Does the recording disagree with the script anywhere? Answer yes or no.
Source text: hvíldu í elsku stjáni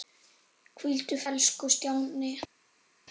no